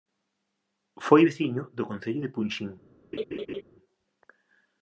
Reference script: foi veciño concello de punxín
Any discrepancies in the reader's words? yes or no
yes